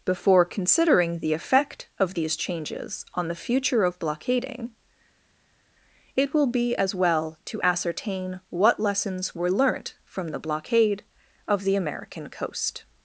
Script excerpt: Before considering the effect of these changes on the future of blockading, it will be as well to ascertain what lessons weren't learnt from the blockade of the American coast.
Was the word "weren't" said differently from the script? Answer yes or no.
yes